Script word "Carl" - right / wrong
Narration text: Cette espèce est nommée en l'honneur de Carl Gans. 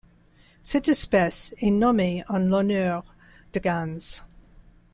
wrong